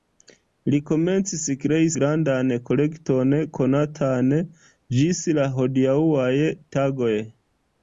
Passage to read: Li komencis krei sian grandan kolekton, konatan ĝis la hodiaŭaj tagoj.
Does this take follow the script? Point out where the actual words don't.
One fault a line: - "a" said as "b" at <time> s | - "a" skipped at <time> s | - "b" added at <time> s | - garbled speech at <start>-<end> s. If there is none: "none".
- "sian" skipped at 1.9 s